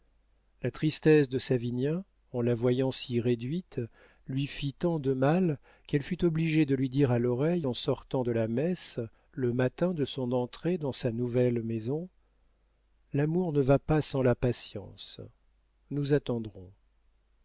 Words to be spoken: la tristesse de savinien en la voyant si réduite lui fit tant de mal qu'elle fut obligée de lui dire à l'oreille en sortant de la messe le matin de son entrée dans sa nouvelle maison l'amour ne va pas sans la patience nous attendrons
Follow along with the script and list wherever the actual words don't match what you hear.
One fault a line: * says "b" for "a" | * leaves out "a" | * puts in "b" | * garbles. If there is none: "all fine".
all fine